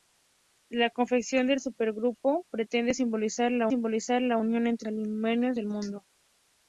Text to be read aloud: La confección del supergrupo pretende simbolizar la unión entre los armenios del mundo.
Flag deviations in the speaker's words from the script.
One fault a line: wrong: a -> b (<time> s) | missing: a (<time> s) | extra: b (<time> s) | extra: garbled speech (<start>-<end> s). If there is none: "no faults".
extra: simbolizar la (3.7 s)
missing: los (4.9 s)